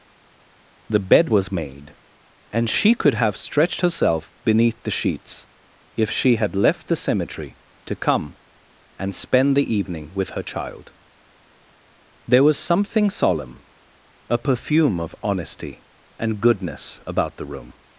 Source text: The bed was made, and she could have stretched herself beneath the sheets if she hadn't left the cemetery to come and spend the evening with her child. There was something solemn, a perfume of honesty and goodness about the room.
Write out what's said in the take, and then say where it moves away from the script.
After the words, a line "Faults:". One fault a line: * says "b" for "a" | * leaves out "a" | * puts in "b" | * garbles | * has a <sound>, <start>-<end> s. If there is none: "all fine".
The bed was made, and she could have stretched herself beneath the sheets if she had left the cemetery to come and spend the evening with her child. There was something solemn, a perfume of honesty and goodness about the room.
Faults:
* says "had" for "hadn't"